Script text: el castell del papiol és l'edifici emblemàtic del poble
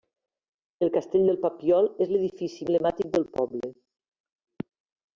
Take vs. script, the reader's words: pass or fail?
pass